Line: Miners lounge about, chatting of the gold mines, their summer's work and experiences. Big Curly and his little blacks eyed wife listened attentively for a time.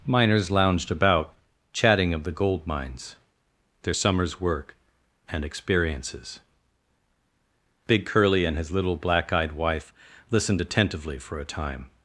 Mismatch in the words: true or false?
true